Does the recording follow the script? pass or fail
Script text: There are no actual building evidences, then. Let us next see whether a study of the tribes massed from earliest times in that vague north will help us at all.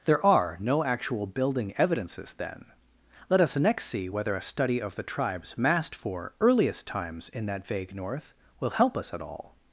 fail